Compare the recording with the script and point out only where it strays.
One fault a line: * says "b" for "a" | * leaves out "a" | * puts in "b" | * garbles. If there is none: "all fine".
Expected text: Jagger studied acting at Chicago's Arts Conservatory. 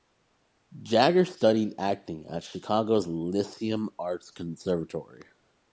* puts in "Lyceum"